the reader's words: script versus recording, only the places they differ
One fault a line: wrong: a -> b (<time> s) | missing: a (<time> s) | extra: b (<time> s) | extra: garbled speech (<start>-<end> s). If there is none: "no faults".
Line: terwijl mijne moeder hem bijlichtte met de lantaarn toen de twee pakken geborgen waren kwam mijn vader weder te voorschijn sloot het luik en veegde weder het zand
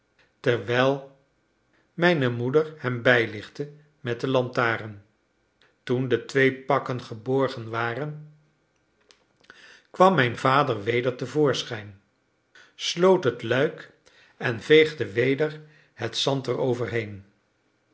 no faults